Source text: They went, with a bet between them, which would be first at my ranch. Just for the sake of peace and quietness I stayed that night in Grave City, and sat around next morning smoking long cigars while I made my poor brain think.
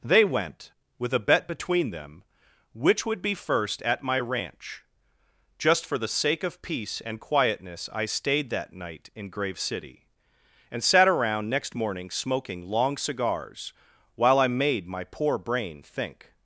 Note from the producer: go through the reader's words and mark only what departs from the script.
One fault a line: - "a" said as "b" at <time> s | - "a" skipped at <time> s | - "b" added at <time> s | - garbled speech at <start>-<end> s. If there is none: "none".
none